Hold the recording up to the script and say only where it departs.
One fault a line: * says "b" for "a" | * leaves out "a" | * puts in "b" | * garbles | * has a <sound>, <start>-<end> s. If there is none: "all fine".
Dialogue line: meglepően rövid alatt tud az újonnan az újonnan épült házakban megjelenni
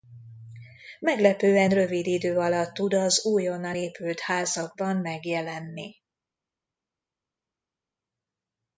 * puts in "idő"
* leaves out "az újonnan"